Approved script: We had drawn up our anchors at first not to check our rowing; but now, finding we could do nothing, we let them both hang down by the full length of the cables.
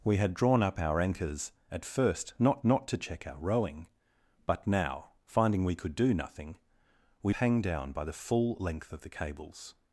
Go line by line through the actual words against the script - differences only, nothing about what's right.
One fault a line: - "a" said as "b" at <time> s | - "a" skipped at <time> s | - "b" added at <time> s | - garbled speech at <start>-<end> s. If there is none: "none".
- "not" added at 2.6 s
- "let them both" skipped at 7.3 s